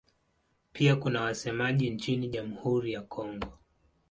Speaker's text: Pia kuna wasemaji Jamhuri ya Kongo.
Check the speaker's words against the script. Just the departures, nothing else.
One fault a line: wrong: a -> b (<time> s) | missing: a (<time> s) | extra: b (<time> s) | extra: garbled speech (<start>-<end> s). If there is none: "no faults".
extra: nchini (1.9 s)